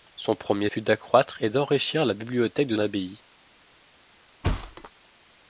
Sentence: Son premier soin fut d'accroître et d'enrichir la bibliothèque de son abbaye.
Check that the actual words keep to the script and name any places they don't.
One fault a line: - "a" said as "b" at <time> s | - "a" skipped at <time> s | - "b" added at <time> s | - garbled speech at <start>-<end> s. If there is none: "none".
- "soin" skipped at 0.7 s
- "son" skipped at 2.7 s